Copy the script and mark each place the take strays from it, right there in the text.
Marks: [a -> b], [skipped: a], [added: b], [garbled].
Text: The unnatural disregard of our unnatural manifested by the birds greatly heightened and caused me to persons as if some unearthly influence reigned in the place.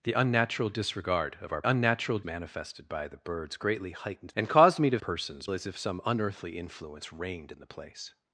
The unnatural disregard of our unnatural manifested by the birds greatly heightened and caused me to persons as if some unearthly influence reigned in the place.